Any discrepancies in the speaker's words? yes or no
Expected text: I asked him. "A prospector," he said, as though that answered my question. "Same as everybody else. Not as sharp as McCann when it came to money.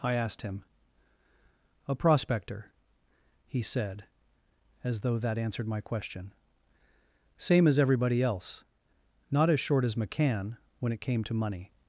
yes